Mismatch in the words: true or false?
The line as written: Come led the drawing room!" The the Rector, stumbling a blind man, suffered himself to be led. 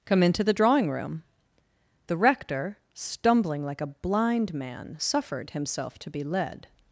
true